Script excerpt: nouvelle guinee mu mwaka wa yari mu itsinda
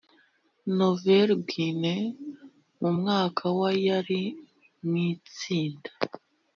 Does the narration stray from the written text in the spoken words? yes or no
no